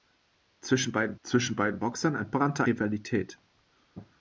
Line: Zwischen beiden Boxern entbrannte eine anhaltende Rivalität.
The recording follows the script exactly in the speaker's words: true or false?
false